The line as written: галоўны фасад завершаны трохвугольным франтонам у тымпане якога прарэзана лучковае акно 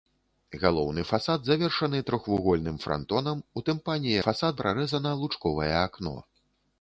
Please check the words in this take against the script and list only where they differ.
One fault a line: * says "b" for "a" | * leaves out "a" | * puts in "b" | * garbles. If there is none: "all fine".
* says "фасад" for "якога"